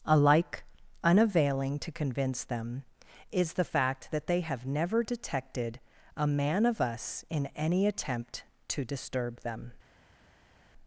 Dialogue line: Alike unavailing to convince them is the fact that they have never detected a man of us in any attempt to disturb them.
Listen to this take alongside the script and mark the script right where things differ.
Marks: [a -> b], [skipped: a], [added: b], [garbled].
Alike unavailing to convince them is the fact that they have never detected a man of us in any attempt to disturb them.